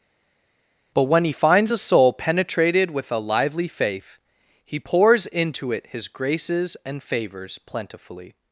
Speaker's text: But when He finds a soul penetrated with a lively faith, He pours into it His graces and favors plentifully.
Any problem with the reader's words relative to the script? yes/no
no